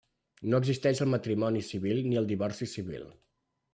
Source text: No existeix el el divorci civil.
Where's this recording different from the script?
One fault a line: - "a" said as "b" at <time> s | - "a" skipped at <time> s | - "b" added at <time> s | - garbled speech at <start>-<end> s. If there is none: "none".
- "matrimoni civil ni" added at 1.1 s